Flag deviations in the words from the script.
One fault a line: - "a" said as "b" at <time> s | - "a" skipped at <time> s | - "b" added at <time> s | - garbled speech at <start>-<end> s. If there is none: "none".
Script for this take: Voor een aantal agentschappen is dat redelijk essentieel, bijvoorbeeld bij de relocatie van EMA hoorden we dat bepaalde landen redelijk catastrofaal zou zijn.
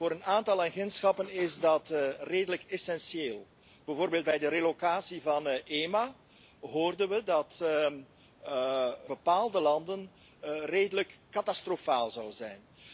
none